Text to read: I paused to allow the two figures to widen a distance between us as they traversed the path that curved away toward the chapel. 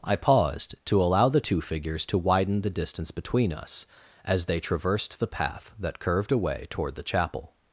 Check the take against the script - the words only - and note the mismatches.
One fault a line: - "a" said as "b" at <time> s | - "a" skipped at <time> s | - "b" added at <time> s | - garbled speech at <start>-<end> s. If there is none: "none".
- "a" said as "the" at 2.6 s